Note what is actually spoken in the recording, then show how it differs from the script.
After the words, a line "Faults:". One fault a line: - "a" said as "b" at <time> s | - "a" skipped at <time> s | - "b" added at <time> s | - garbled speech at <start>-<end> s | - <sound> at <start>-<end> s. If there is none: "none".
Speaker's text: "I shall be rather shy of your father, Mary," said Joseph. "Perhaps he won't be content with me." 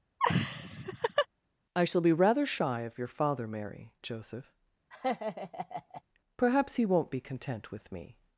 "I shall be rather shy of your father, Mary," Joseph. "Perhaps he won't be content with me."
Faults:
- laugh at 0.2-1.3 s
- "said" skipped at 3.9 s
- laugh at 4.9-6.0 s